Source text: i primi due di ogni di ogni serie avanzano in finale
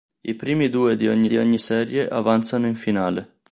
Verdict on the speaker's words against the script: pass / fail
pass